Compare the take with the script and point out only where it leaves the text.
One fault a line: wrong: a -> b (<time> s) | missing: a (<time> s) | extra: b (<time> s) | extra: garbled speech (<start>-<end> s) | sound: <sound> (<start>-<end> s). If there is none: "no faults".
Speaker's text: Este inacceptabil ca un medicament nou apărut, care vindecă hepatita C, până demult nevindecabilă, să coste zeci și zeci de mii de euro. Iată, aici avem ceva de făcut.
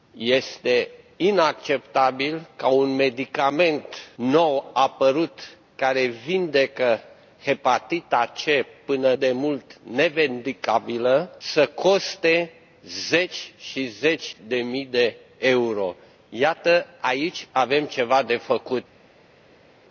no faults